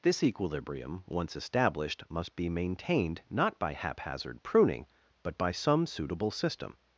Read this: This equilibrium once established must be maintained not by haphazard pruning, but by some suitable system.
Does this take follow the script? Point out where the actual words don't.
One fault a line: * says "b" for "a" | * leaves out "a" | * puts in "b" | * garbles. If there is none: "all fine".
all fine